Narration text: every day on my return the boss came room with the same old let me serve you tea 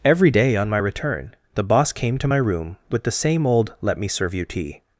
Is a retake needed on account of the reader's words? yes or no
yes